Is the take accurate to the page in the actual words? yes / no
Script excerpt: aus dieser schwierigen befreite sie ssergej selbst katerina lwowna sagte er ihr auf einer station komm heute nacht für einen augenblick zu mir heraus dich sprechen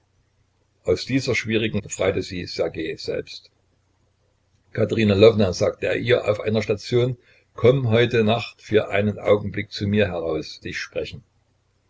yes